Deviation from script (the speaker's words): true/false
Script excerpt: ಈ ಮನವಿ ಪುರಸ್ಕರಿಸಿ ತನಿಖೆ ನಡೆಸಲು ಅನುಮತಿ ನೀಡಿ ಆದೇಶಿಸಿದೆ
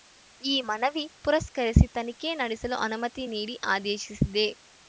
false